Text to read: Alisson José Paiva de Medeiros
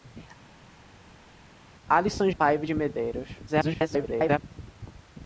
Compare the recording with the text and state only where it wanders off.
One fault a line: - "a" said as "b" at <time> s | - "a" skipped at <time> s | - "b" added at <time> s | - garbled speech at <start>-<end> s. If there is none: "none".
- "José" skipped at 2.3 s
- garbled speech at 3.5-4.4 s